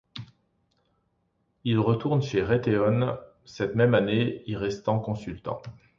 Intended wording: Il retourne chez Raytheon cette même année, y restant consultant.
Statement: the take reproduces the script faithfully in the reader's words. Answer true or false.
true